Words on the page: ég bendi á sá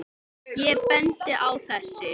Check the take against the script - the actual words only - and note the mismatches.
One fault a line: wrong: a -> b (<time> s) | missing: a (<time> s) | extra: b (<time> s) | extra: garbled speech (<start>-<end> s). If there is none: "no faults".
wrong: sá -> þessi (1.7 s)